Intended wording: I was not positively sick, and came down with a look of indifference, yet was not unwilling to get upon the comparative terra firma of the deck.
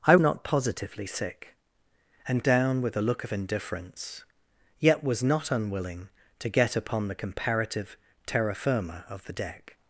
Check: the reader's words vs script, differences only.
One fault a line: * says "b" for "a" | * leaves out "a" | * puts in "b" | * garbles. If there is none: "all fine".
* leaves out "was"
* leaves out "came"